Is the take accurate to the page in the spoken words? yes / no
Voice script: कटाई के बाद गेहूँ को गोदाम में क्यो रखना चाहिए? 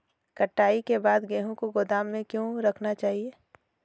yes